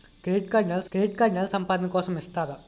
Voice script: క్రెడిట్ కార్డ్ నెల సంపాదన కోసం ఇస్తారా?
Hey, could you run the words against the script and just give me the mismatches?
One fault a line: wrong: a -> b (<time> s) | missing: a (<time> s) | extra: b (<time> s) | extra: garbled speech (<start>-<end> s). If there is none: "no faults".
extra: క్రెడిట్ కార్డ్ నెల (0.9 s)